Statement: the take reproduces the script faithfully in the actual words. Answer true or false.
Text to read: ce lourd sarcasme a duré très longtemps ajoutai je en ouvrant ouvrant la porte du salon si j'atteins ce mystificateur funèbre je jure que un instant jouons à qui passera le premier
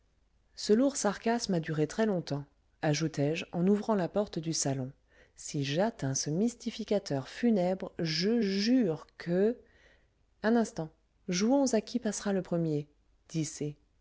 false